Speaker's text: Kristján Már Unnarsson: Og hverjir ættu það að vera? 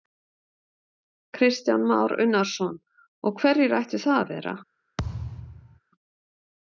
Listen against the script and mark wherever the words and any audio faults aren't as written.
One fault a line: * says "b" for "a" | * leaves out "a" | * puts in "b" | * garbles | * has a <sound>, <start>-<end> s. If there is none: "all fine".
* has a thud, 5.0-5.8 s